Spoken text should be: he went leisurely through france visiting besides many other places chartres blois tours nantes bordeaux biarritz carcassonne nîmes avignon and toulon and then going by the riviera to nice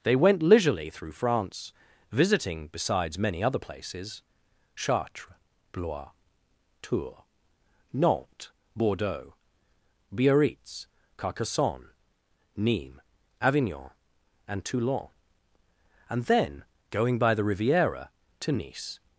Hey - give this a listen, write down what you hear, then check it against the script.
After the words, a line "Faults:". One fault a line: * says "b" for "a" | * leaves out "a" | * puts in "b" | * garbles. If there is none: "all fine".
they went leisurely through france visiting besides many other places chartres blois tours nantes bordeaux biarritz carcassonne nîmes avignon and toulon and then going by the riviera to nice
Faults:
* says "they" for "he"